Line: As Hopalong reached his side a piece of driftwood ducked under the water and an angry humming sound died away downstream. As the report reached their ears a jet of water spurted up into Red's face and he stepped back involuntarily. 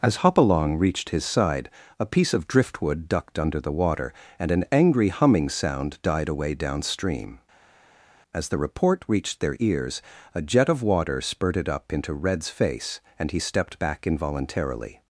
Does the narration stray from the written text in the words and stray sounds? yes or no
no